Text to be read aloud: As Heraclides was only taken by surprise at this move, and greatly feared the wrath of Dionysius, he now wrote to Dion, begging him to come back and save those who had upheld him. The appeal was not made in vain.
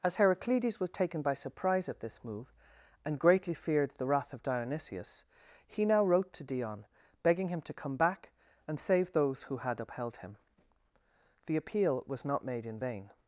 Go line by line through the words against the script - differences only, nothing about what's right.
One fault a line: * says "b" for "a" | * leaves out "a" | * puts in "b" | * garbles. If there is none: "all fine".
* leaves out "only"